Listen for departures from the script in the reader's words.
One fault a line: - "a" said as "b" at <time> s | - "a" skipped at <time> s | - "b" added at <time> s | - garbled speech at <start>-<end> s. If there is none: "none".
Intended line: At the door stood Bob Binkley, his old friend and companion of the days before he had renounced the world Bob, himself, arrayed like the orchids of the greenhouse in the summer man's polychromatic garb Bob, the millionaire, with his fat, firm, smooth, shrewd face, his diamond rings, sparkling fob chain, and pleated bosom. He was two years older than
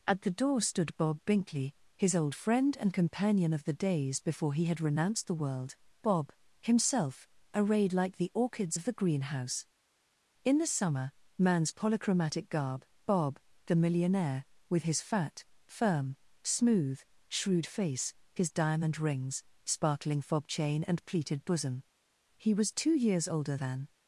none